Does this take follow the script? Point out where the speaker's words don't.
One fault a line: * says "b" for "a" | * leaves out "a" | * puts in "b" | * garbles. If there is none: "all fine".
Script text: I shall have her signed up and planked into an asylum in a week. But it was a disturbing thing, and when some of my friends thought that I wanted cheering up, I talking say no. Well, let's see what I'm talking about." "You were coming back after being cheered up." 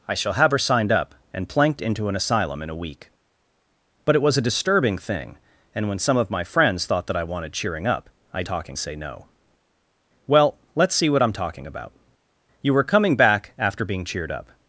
all fine